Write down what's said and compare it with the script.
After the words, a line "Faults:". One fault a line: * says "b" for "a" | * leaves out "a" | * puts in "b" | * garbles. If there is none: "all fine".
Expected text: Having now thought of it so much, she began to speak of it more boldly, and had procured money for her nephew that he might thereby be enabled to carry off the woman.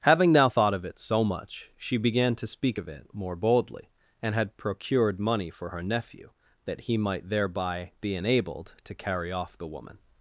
Having now thought of it so much, she began to speak of it more boldly, and had procured money for her nephew that he might thereby be enabled to carry off the woman.
Faults:
all fine